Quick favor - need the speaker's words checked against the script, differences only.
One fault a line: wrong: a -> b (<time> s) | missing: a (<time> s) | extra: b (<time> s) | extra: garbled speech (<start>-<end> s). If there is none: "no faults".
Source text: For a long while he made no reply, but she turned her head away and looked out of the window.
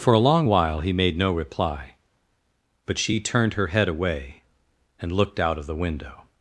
no faults